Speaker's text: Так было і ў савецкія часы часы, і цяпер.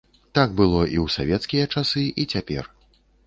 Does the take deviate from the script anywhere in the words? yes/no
yes